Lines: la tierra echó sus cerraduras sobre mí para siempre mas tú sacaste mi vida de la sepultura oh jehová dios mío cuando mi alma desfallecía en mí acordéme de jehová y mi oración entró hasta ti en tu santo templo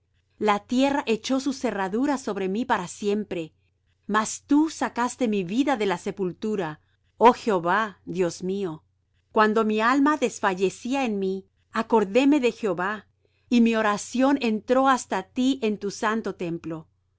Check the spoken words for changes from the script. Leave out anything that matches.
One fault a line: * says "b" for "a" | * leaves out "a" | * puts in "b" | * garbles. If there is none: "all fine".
all fine